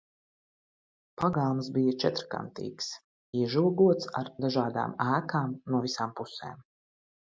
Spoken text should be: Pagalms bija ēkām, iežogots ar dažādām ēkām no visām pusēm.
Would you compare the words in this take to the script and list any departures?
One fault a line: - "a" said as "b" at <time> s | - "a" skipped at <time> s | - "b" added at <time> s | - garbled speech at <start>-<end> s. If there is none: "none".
- "ēkām" said as "četrkantīgs" at 2.0 s